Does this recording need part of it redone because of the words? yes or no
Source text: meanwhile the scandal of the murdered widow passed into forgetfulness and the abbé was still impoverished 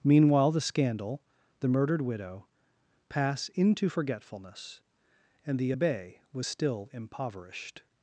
yes